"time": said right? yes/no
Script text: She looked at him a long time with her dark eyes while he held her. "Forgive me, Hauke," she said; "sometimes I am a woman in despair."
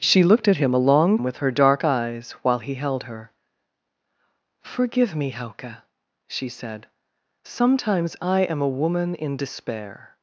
no